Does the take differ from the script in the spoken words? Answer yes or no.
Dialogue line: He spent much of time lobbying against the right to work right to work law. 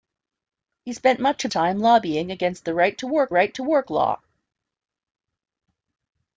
no